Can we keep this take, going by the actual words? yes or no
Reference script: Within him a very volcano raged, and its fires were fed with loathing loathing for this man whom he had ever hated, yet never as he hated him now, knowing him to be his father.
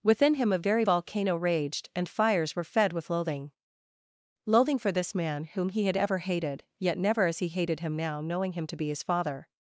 no